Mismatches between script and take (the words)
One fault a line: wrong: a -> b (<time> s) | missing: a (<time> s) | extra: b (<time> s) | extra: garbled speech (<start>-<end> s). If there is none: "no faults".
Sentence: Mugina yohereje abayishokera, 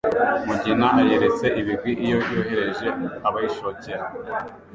extra: ayeretse ibigwi iyo (1.0 s)